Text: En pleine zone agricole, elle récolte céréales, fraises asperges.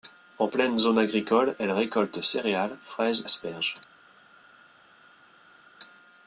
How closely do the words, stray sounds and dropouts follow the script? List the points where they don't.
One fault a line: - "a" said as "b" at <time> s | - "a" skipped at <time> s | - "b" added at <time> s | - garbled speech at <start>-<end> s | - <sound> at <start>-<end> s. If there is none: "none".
none